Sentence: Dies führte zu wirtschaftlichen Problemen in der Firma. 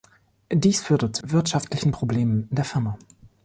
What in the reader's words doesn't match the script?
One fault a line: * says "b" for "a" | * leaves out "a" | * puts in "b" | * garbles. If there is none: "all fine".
all fine